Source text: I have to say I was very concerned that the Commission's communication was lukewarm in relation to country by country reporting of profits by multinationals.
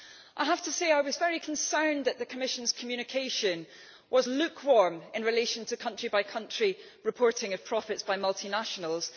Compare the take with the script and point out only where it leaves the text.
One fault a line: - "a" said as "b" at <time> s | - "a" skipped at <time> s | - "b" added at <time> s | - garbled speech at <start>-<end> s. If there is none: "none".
none